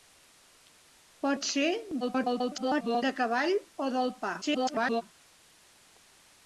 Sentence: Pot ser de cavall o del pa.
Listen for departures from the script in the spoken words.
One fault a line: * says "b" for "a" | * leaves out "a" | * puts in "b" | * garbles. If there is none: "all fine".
* garbles
* garbles